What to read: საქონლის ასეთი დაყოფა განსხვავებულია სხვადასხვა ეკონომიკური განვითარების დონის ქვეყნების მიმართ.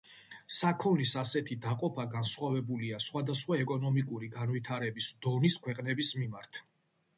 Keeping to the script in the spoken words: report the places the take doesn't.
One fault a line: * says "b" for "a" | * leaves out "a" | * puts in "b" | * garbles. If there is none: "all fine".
all fine